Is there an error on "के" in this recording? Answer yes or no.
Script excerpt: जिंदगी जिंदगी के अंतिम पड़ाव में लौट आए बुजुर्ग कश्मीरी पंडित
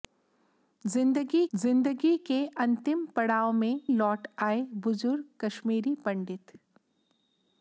no